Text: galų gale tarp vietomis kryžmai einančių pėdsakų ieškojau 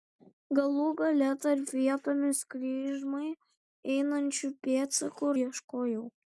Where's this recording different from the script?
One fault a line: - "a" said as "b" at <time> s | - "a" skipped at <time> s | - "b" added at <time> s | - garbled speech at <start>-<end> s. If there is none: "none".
none